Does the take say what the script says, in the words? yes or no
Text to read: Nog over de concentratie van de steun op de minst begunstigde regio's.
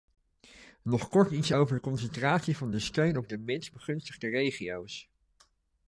no